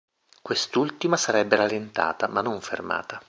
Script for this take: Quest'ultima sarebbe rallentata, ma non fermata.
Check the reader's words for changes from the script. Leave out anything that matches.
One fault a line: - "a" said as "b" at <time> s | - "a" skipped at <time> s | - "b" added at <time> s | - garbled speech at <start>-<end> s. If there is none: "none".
none